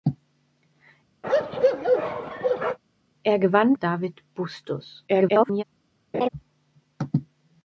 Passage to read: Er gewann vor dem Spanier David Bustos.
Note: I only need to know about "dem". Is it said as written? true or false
false